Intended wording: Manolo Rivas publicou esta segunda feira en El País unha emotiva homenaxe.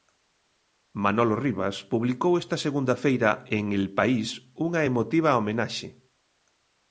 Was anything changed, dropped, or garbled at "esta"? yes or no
no